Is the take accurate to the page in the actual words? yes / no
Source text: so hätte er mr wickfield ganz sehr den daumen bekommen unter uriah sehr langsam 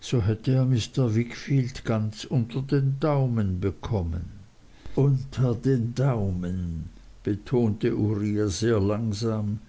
no